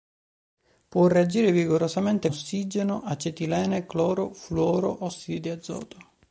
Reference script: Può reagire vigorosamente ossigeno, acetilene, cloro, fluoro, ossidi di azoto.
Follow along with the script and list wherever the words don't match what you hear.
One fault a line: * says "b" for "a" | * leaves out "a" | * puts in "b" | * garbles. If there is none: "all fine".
all fine